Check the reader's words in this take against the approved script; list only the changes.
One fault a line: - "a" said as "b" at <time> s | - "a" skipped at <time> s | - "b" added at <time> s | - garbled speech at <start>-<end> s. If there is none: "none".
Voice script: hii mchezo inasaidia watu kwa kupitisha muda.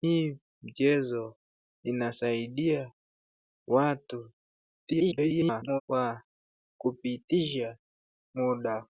- garbled speech at 4.9-5.8 s